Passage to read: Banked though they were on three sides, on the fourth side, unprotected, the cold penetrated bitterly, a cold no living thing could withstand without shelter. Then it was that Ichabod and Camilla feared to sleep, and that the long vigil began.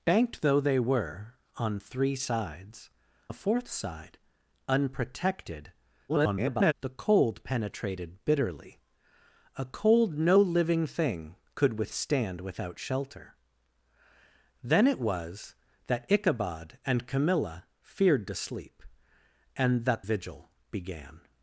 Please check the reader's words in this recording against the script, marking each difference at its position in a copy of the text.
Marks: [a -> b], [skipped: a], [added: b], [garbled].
Banked though they were on three sides, [skipped: on] the fourth side, unprotected, [garbled] the cold penetrated bitterly, a cold no living thing could withstand without shelter. Then it was that Ichabod and Camilla feared to sleep, and that [skipped: the long] vigil began.